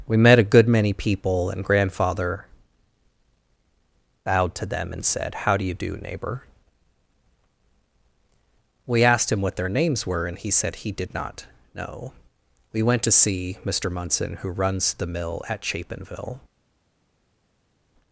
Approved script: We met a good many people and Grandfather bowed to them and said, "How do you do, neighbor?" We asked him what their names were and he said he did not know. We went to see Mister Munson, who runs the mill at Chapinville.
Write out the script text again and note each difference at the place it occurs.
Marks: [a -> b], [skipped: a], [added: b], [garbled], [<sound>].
We met a good many people and Grandfather bowed to them and said, "How do you do, neighbor?" We asked him what their names were and he said he did not know. We went to see Mister Munson, who runs the mill at Chapinville.